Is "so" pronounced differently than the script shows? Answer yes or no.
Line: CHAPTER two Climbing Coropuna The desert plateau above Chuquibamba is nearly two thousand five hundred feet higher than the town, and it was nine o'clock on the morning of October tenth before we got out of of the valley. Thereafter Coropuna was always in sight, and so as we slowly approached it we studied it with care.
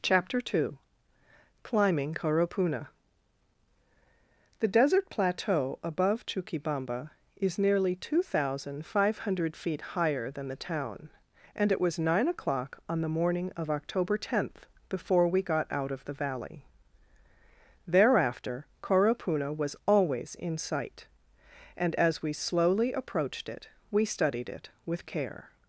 yes